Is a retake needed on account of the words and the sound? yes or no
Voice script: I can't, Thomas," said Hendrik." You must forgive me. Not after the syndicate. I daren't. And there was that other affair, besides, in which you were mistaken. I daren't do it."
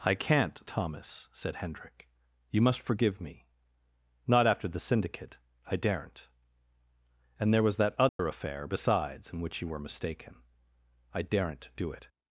yes